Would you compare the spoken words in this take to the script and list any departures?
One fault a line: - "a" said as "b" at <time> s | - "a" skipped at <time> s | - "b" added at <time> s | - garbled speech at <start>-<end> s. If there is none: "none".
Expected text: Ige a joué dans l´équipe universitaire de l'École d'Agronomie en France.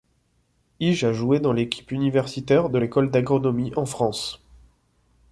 none